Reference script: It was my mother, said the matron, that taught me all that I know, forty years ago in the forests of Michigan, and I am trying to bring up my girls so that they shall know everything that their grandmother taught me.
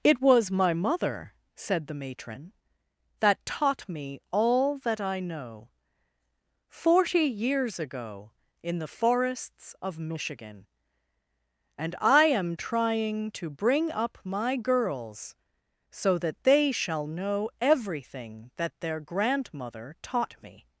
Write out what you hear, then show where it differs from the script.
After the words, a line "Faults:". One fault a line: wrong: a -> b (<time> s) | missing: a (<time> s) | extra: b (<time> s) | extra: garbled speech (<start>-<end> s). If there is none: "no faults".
It was my mother, said the matron, that taught me all that I know, forty years ago in the forests of Michigan, and I am trying to bring up my girls so that they shall know everything that their grandmother taught me.
Faults:
no faults